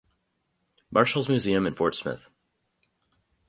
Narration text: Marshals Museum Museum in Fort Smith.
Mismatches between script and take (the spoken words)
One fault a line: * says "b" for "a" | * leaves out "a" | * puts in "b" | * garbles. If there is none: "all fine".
* leaves out "Museum"